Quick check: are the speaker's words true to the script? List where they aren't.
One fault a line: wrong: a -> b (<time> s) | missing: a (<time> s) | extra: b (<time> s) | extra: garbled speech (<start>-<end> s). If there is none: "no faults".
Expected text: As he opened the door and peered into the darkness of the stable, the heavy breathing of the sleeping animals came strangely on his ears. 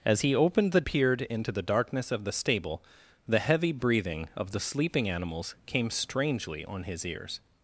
missing: door and (0.8 s)